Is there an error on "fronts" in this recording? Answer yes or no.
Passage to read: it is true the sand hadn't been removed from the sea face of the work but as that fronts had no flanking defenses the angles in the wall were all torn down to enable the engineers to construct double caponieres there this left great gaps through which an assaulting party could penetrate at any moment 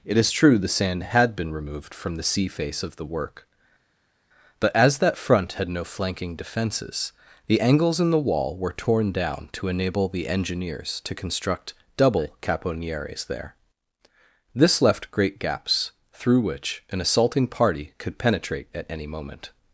yes